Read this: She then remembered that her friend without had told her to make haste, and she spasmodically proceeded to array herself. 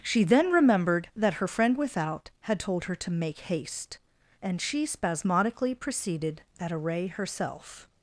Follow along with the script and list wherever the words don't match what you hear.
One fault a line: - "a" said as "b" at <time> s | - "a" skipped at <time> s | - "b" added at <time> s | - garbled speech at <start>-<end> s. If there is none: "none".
- "to" said as "at" at 6.6 s